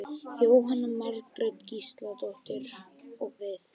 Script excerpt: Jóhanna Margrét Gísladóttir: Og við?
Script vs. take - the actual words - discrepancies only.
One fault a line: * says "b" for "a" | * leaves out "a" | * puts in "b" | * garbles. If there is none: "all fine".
all fine